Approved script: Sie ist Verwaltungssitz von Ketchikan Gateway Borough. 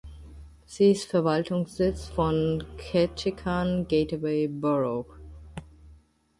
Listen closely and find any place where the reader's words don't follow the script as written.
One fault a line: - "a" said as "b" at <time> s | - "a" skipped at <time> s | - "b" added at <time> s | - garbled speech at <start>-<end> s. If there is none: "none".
none